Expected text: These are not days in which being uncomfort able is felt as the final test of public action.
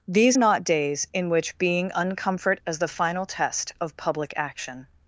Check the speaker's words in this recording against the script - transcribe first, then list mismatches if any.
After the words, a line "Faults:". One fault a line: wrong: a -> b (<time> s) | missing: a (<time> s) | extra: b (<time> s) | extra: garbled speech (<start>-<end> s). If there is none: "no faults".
These not days in which being uncomfort as the final test of public action.
Faults:
missing: are (0.4 s)
missing: able is felt (2.6 s)